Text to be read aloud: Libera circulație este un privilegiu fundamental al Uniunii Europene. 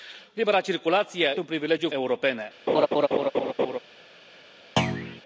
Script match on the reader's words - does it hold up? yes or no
no